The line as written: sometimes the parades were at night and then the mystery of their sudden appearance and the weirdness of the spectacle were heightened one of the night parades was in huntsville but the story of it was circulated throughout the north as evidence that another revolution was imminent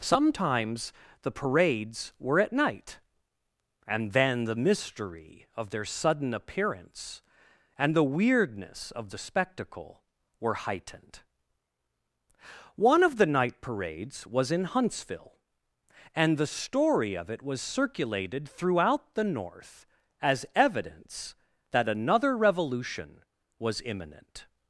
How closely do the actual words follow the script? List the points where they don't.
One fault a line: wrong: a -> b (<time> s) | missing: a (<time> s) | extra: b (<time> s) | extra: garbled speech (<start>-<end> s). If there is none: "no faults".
wrong: but -> and (16.1 s)